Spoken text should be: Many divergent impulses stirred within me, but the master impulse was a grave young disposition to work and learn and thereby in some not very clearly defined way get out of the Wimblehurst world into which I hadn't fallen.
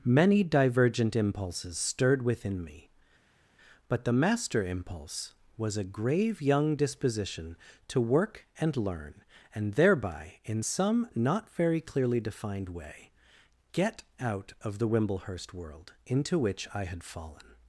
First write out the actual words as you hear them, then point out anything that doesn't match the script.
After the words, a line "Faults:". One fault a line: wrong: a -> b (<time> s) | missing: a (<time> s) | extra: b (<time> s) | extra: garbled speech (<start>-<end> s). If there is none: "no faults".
Many divergent impulses stirred within me, but the master impulse was a grave young disposition to work and learn and thereby in some not very clearly defined way get out of the Wimblehurst world into which I had fallen.
Faults:
wrong: hadn't -> had (16.9 s)